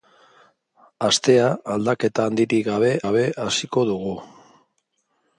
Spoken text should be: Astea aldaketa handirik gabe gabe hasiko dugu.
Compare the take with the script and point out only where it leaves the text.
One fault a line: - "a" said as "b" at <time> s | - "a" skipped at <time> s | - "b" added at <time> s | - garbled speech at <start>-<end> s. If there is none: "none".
none